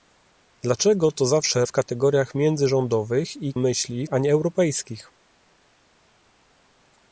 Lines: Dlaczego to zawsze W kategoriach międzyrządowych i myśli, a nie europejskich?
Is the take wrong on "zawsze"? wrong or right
right